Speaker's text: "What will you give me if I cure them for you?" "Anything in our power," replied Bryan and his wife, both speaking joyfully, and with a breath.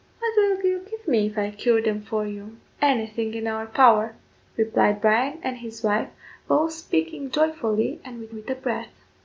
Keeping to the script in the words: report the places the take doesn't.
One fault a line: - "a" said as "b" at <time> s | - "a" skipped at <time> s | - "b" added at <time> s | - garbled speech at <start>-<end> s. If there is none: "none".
- "with" added at 8.3 s